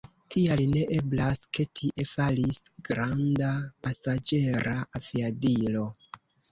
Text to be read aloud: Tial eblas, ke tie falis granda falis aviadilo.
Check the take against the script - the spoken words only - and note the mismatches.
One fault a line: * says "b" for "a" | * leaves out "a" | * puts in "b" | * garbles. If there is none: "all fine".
* puts in "ne"
* says "pasaĝera" for "falis"